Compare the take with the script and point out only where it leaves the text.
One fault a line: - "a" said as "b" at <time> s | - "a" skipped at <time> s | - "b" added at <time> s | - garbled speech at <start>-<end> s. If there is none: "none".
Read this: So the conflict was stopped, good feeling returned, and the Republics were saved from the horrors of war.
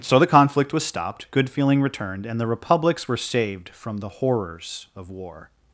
none